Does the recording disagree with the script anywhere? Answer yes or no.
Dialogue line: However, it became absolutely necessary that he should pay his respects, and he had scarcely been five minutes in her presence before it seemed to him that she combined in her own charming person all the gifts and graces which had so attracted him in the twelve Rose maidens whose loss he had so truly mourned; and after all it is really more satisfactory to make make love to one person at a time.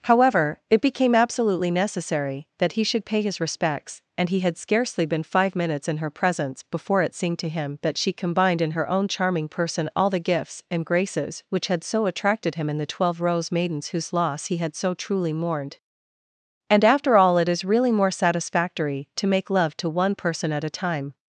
yes